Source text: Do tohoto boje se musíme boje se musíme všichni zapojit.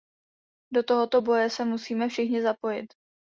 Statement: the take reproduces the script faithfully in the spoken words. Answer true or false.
false